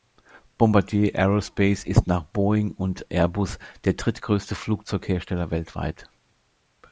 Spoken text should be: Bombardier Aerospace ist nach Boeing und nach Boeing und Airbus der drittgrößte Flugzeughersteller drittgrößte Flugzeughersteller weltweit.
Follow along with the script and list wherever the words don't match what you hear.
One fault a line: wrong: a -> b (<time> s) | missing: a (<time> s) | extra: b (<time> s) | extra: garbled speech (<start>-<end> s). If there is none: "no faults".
missing: nach Boeing und (3.0 s)
missing: drittgrößte Flugzeughersteller (5.5 s)